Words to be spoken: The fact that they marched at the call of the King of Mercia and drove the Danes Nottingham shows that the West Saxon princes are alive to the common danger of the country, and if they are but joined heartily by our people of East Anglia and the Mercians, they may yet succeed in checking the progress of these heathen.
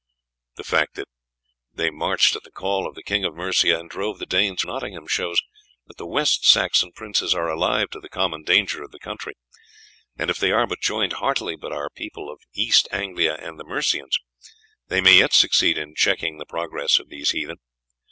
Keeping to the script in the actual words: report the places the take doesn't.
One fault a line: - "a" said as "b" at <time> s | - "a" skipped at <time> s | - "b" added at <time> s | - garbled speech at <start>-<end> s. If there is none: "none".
none